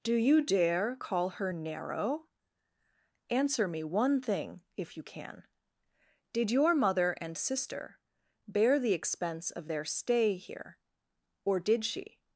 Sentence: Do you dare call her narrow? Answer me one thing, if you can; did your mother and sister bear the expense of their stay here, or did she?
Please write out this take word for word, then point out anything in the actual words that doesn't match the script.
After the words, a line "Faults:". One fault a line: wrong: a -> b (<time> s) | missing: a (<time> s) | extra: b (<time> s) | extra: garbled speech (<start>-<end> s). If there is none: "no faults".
Do you dare call her narrow? Answer me one thing, if you can; did your mother and sister bear the expense of their stay here, or did she?
Faults:
no faults